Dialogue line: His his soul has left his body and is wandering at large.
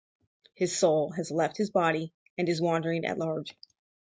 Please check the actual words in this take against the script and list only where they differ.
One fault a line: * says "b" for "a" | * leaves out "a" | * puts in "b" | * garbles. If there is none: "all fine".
* leaves out "his"